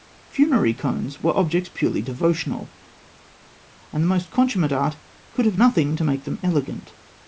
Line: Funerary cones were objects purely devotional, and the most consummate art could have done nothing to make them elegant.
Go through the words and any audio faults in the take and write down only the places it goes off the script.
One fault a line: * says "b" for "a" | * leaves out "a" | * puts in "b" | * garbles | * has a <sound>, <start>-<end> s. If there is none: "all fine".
* leaves out "done"